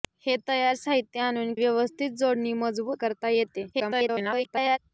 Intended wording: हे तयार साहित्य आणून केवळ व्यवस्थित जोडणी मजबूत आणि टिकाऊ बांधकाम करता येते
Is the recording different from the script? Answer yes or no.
yes